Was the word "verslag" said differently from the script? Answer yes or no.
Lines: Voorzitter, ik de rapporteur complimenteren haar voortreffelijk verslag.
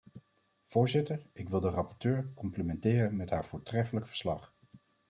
no